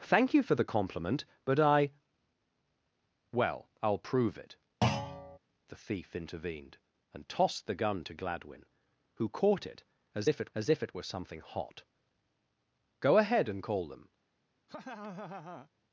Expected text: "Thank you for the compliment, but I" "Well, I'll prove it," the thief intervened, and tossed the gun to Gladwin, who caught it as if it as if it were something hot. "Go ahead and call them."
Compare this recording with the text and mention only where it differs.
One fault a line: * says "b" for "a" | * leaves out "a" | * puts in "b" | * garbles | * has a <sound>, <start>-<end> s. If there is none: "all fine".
* has a thud, 4.8-5.4 s
* has a laugh, 14.7-15.7 s